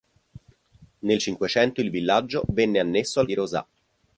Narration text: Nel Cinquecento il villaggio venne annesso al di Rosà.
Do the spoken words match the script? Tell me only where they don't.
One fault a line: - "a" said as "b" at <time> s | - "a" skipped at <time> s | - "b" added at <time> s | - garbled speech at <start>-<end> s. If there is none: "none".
none